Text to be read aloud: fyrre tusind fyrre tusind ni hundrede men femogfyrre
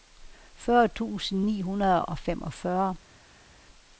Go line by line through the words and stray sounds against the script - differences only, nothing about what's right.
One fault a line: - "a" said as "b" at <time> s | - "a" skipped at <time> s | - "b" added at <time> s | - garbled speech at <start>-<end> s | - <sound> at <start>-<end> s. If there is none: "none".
- "fyrre tusind" skipped at 1.4 s
- "men" said as "og" at 2.1 s